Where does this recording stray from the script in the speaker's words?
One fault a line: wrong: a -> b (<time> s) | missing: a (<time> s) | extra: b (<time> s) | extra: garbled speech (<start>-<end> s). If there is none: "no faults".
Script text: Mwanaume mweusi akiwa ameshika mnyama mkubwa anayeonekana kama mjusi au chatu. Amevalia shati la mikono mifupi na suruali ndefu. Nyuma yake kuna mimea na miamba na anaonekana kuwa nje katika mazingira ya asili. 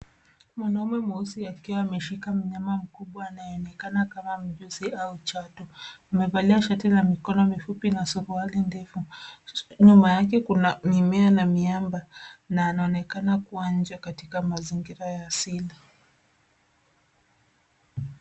no faults